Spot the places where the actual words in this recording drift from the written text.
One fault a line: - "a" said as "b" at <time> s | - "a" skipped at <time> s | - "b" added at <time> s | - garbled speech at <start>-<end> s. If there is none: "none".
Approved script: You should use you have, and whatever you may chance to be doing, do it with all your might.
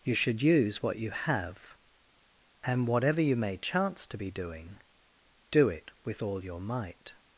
- "what" added at 0.8 s